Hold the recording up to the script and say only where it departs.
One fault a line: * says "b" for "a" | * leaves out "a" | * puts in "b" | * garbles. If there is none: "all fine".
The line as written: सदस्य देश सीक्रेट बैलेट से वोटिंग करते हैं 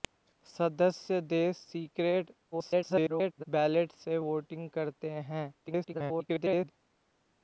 * garbles
* garbles